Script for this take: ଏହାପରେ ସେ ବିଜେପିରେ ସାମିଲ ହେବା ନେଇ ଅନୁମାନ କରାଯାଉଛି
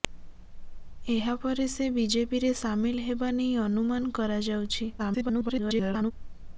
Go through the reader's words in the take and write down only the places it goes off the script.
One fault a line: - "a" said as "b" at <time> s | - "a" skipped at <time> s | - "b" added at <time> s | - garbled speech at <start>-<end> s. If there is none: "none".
- garbled speech at 5.0-6.1 s